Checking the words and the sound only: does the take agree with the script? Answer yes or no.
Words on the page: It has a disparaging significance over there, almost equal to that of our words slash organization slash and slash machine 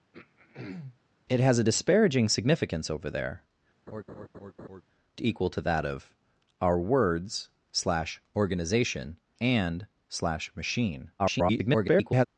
no